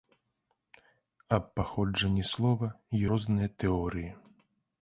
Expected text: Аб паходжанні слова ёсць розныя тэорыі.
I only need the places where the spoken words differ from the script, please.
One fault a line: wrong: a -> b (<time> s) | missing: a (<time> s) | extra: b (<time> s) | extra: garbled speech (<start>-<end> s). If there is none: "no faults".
missing: ёсць (2.7 s)